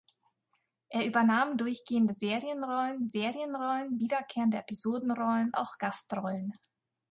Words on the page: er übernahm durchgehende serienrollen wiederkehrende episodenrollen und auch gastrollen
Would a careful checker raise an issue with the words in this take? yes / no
yes